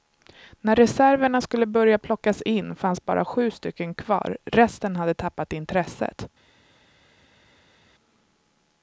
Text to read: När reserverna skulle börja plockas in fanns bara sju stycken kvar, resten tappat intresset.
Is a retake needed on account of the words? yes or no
yes